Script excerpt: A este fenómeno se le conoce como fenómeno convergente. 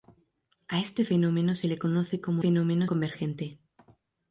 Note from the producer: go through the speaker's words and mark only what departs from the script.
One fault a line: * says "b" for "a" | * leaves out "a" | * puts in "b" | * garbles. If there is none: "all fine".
all fine